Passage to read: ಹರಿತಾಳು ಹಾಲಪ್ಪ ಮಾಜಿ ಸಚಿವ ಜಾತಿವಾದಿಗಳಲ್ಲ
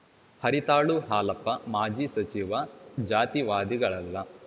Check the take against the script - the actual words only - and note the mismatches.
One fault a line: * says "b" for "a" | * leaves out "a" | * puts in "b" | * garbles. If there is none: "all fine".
all fine